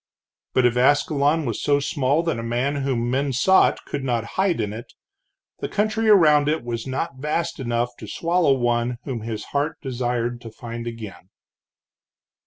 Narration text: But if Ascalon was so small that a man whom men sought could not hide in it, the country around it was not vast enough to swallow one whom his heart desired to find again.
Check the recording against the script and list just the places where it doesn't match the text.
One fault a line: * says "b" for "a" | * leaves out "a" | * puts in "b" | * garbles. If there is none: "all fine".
all fine